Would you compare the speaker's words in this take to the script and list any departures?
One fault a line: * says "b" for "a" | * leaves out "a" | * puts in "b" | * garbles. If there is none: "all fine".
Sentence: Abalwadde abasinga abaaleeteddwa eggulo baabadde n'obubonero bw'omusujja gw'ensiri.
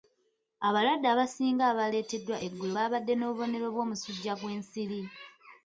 all fine